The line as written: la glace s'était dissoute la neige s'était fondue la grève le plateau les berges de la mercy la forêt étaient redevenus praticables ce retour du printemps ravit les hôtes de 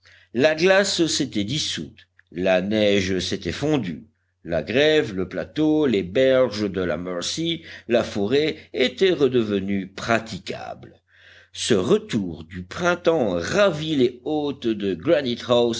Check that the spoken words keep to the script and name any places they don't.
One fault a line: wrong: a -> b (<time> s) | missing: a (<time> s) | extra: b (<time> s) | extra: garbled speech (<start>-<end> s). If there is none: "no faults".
no faults